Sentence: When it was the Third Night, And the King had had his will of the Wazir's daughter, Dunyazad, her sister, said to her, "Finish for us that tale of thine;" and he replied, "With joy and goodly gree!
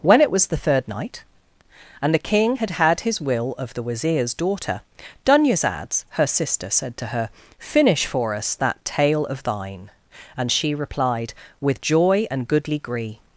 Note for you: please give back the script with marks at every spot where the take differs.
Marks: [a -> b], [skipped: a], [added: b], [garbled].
When it was the Third Night, And the King had had his will of the Wazir's daughter, Dunyazad, her sister, said to her, "Finish for us that tale of thine;" and [he -> she] replied, "With joy and goodly gree!